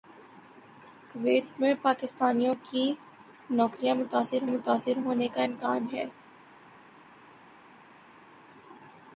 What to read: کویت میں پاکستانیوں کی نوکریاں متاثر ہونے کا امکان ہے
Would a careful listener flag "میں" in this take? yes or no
no